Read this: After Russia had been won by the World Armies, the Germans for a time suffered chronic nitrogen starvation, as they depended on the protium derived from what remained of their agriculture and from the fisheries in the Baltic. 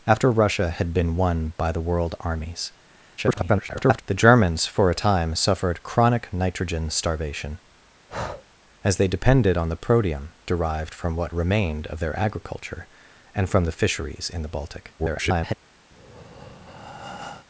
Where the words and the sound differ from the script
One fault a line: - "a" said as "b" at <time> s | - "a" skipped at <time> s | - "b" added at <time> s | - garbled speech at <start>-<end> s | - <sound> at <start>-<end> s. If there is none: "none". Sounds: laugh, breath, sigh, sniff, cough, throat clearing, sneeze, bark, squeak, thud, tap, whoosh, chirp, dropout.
- garbled speech at 3.2-4.0 s
- breath at 8.1-8.4 s
- garbled speech at 15.0-15.5 s
- breath at 15.9-17.5 s